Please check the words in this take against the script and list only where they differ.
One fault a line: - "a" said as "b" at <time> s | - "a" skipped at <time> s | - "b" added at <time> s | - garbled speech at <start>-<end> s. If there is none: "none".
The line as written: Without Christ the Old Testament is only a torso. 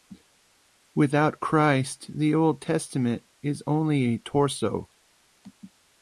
none